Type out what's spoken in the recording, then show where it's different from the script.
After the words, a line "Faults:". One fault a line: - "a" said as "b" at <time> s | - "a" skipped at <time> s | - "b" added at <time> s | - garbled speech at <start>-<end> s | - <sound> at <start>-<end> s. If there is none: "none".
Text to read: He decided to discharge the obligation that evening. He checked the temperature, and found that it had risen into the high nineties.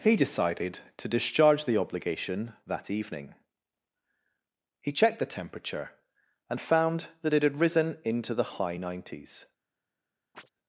He decided to discharge the obligation that evening. He checked the temperature, and found that it had risen into the high nineties.
Faults:
- chirp at 10.3-10.5 s